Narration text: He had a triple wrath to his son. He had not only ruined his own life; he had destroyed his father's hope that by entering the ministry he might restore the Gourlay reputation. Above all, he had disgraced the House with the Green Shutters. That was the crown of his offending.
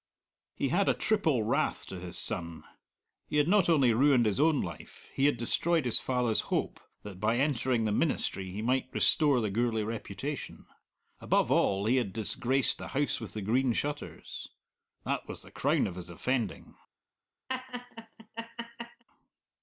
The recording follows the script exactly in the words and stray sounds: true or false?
false